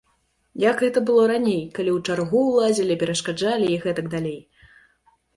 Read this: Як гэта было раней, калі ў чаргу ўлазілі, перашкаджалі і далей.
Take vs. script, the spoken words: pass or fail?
fail